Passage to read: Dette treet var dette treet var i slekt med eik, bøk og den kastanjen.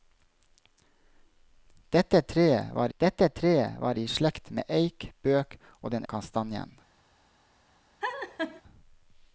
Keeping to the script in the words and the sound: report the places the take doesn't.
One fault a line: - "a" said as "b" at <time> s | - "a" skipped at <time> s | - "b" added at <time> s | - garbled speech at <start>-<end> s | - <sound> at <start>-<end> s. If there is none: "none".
- laugh at 8.0-8.6 s